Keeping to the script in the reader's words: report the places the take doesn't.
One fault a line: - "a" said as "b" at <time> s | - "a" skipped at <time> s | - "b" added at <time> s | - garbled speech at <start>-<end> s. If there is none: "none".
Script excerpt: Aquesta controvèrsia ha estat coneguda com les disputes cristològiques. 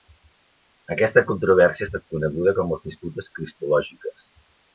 none